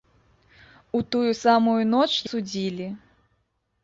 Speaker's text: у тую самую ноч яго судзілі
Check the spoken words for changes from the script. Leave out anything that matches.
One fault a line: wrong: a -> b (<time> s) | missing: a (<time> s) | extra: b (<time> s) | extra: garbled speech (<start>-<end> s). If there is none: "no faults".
missing: яго (2.1 s)